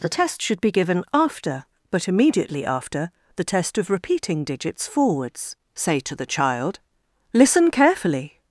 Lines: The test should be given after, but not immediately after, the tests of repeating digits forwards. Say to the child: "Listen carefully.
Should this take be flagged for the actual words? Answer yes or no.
yes